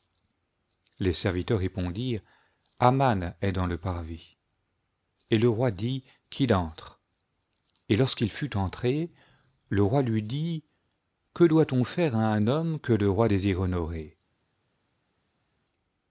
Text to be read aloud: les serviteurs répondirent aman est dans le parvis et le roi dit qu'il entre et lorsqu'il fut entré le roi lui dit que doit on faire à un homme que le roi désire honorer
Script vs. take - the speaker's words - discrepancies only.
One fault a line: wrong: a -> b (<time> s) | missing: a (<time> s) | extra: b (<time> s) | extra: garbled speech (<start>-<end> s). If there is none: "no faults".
no faults